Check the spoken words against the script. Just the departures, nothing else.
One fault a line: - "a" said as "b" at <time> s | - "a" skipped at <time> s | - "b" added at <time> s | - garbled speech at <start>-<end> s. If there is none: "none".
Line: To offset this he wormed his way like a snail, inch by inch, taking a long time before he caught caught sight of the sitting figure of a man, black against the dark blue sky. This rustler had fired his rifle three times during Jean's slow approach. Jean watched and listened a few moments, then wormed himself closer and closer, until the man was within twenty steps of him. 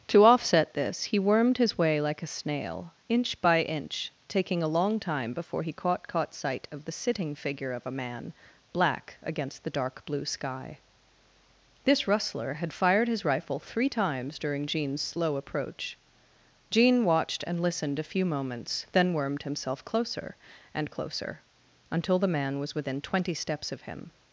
none